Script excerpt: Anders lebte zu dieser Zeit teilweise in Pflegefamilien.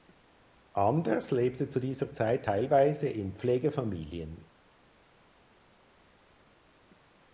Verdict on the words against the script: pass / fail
pass